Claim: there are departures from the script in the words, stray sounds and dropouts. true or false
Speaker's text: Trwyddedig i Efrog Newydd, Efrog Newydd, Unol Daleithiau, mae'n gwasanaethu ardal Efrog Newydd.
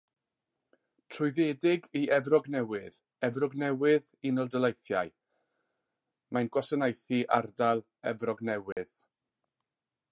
true